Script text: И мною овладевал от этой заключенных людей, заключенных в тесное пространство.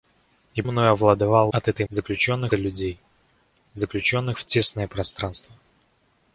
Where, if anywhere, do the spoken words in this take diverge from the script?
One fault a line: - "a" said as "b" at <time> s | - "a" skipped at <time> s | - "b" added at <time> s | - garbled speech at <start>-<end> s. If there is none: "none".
none